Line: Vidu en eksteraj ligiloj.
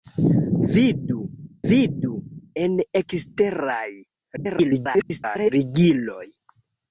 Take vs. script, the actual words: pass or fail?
fail